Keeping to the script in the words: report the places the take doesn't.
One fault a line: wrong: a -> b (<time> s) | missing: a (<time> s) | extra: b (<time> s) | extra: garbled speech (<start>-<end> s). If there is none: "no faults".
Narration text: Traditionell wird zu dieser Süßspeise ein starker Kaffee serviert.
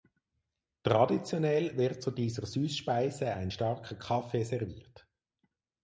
no faults